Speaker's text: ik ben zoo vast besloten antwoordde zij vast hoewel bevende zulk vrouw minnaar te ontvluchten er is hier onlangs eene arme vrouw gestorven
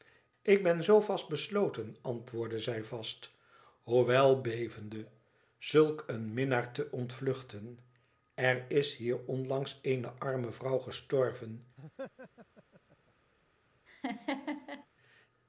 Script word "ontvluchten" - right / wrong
right